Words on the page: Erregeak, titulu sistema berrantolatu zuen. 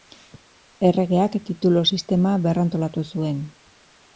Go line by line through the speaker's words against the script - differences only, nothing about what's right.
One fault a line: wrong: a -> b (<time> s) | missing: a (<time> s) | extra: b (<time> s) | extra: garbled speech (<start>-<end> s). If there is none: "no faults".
no faults